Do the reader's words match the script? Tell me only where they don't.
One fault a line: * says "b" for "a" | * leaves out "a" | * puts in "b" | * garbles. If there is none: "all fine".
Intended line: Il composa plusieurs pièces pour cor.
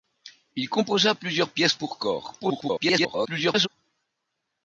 * garbles